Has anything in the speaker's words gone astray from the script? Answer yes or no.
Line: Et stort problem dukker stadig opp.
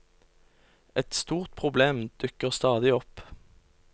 no